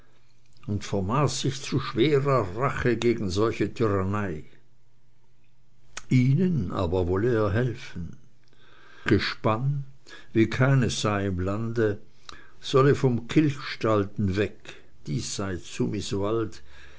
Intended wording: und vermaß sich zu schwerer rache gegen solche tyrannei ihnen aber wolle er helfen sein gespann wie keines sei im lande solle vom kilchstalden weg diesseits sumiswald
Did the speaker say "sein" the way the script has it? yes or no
no